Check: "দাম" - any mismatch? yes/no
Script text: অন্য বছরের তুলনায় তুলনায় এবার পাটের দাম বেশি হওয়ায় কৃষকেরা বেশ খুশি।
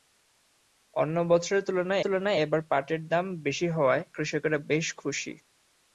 no